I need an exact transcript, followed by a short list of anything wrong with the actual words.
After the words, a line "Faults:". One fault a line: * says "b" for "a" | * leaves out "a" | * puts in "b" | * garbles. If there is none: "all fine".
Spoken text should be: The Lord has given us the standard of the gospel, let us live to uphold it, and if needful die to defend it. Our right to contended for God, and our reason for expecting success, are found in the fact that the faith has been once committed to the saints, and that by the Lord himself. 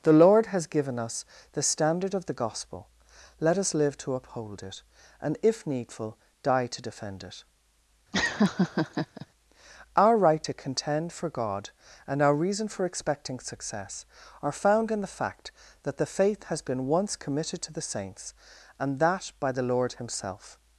The Lord has given us the standard of the gospel, let us live to uphold it, and if needful die to defend it. Our right to contend for God, and our reason for expecting success, are found in the fact that the faith has been once committed to the saints, and that by the Lord himself.
Faults:
* says "contend" for "contended"